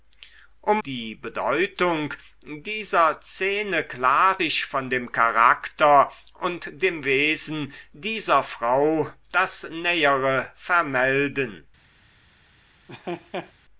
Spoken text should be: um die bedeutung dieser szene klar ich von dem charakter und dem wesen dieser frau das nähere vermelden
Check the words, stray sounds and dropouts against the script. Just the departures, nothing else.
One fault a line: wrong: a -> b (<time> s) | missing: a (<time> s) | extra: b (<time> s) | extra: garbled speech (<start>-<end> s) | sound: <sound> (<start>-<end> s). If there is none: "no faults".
sound: laugh (12.9-13.5 s)